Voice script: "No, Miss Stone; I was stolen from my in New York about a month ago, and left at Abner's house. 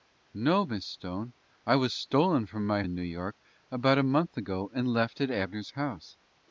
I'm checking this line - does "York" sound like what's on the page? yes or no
yes